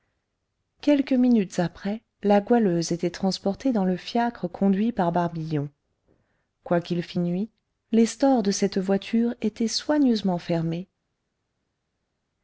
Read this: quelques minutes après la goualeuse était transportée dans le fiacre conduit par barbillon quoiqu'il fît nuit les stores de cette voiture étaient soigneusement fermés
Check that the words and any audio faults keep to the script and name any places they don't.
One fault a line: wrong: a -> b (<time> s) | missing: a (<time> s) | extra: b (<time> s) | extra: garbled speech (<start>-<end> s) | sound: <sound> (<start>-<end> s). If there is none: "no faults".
no faults